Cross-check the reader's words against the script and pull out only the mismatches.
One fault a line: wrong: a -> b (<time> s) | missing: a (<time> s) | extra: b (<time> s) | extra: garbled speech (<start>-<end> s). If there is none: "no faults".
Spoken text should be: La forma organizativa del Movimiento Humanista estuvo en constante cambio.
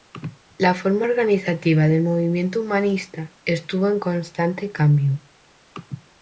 no faults